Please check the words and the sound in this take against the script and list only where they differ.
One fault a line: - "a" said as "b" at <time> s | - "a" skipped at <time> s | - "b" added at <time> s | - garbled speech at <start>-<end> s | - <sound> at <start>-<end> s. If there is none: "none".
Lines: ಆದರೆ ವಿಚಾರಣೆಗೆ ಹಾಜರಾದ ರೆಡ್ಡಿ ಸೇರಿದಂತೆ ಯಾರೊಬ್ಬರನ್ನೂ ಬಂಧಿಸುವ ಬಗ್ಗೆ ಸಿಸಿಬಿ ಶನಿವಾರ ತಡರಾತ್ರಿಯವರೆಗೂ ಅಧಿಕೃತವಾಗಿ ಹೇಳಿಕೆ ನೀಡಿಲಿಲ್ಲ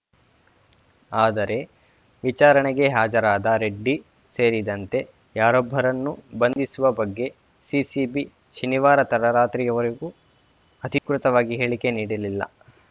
- dropout at 6.5-6.6 s
- dropout at 11.0-11.1 s